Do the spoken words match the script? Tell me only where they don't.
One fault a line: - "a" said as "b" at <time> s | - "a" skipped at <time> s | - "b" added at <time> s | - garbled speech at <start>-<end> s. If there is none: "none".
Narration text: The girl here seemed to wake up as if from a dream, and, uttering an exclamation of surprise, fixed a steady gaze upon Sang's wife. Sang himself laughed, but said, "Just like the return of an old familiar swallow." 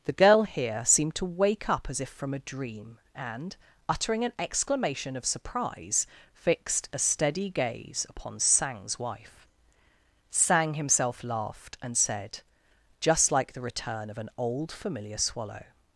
- "but" said as "and" at 11.8 s